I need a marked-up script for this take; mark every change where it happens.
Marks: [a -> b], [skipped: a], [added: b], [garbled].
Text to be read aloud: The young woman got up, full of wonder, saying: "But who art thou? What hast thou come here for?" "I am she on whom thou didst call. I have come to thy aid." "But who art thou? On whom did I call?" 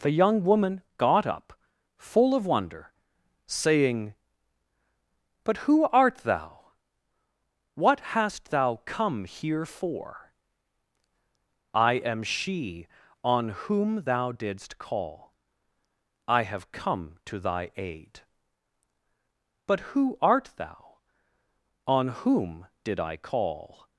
The young woman got up, full of wonder, saying: "But who art thou? What hast thou come here for?" "I am she on whom thou didst call. I have come to thy aid." "But who art thou? On whom did I call?"